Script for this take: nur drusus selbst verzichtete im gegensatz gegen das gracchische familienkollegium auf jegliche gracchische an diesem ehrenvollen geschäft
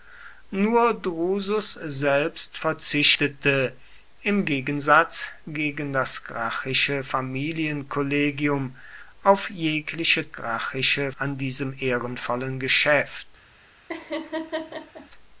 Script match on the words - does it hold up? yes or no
yes